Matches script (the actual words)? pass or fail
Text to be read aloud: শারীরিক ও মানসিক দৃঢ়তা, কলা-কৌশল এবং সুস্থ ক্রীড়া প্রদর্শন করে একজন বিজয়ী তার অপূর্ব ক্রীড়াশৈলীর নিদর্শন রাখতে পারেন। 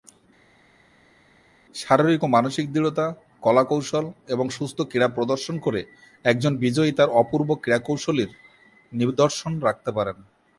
pass